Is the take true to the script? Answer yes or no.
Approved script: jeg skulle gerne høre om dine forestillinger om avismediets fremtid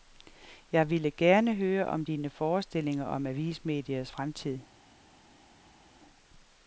no